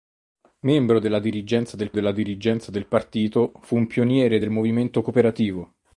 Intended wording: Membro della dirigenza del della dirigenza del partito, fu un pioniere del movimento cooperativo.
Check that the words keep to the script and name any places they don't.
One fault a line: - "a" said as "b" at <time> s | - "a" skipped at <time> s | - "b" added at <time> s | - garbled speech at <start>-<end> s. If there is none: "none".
none